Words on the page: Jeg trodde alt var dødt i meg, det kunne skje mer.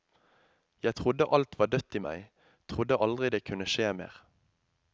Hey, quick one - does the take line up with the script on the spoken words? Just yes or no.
no